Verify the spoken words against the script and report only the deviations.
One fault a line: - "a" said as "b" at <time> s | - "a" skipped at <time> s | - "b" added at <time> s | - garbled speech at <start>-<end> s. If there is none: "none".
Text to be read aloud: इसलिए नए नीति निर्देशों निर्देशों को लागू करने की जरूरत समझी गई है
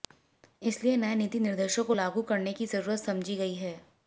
- "निर्देशों" skipped at 1.8 s